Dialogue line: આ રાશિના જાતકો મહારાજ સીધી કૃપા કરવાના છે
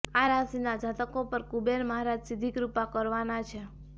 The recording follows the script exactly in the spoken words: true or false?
false